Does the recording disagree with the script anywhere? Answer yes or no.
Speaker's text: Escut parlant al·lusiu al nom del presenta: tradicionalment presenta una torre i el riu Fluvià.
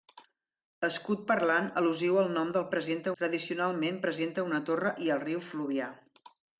no